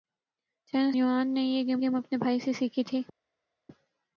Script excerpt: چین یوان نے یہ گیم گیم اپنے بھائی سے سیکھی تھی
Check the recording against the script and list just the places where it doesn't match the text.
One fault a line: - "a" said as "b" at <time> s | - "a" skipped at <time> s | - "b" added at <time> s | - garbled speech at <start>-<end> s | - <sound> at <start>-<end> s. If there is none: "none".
none